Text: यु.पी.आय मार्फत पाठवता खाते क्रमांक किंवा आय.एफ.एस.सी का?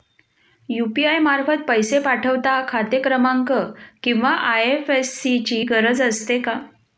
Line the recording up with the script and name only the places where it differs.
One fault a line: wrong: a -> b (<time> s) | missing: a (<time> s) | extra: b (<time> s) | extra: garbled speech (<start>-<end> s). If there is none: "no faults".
extra: पैसे (1.7 s)
extra: ची गरज असते (5.4 s)